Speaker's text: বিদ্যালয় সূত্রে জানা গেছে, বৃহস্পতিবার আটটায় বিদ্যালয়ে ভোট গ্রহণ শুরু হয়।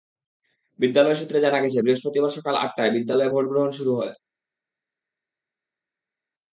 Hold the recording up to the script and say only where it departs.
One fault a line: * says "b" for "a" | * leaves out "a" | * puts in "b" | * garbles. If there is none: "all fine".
* puts in "সকাল"